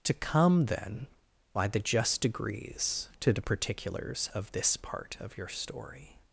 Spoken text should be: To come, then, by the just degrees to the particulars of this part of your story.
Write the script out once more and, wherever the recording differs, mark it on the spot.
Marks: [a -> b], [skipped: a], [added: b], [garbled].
To come, then, by the just degrees to the particulars of this part of your story.